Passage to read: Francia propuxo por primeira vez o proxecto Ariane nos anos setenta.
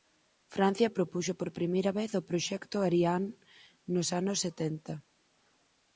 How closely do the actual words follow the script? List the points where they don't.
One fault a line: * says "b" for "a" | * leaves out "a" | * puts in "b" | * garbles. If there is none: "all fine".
all fine